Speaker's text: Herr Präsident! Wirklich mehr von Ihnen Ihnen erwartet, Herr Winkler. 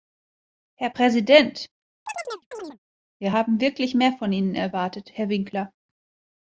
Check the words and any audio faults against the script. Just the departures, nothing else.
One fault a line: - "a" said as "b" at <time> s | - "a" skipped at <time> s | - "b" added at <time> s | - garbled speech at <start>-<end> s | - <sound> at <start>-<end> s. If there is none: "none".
- chirp at 2.1-2.8 s
- "Wir haben" added at 3.2 s
- "Ihnen" skipped at 4.6 s